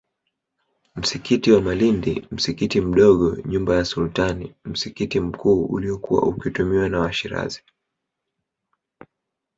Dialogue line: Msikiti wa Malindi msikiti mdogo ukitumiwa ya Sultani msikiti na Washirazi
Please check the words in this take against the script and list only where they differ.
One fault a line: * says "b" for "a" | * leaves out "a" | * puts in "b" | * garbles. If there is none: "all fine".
* says "nyumba" for "ukitumiwa"
* puts in "mkuu uliokuwa ukitumiwa"